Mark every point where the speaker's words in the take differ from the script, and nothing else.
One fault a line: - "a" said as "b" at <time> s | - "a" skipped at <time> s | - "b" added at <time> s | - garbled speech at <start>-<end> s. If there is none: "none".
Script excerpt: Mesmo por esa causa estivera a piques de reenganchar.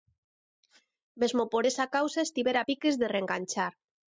none